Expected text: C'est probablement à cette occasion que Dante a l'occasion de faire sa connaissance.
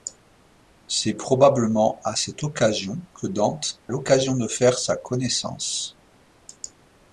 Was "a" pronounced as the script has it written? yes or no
no